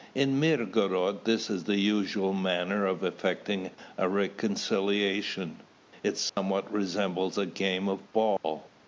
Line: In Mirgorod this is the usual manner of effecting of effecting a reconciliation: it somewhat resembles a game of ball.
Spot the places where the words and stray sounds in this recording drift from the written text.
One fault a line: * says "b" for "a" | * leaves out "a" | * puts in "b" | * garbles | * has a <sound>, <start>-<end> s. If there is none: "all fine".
* leaves out "of effecting"
* has a dropout, 6.3-6.4 s
* has a dropout, 8.4-8.4 s